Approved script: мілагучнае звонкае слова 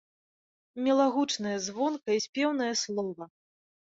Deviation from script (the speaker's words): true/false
true